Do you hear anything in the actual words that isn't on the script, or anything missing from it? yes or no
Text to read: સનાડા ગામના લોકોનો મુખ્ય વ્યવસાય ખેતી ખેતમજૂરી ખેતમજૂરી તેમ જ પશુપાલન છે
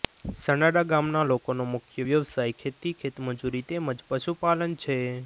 yes